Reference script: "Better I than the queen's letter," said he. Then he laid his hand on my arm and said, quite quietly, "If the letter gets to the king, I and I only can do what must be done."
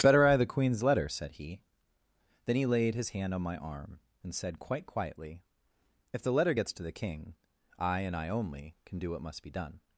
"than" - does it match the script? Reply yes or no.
no